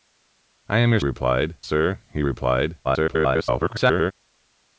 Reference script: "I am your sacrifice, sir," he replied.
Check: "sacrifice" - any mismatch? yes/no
yes